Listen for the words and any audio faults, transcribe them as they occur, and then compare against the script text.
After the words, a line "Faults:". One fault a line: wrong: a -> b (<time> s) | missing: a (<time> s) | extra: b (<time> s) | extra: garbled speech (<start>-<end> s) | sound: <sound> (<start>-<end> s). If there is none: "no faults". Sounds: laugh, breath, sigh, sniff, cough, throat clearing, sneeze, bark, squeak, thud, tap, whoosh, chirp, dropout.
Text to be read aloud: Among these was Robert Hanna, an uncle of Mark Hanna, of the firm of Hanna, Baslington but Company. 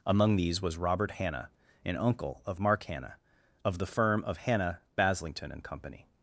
Among these was Robert Hanna, an uncle of Mark Hanna, of the firm of Hanna, Baslington and Company.
Faults:
wrong: but -> and (5.5 s)